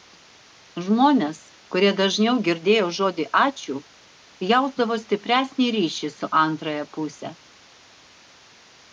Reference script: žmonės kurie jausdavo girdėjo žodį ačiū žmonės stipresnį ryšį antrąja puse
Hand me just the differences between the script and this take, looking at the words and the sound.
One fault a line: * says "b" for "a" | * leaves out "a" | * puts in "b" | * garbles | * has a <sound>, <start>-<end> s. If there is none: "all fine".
* says "dažniau" for "jausdavo"
* says "jausdavo" for "žmonės"
* puts in "su"